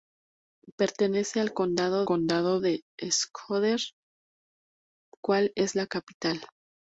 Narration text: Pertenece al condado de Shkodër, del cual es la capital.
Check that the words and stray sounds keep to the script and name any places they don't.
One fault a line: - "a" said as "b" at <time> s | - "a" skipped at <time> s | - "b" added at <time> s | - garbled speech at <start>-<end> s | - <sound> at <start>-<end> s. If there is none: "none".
- "condado" added at 2.0 s
- "del" skipped at 3.8 s